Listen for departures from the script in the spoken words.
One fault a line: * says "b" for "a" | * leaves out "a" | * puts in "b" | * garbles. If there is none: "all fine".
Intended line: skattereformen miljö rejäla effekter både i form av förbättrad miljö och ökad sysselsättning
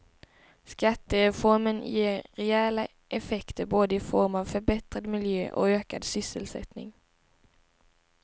* says "ger" for "miljö"